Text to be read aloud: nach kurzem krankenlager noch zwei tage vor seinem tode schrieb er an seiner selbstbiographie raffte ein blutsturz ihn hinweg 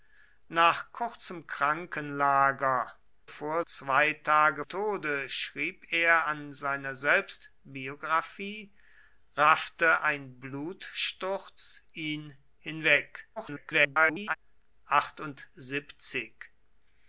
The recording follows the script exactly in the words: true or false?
false